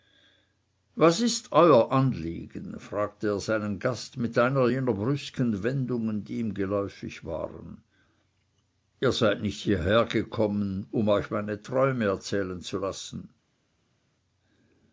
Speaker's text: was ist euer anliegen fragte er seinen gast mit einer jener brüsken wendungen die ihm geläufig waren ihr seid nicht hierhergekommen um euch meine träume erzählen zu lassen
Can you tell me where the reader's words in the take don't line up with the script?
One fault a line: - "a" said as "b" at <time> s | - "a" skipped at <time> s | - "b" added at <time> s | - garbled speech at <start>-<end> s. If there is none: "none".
none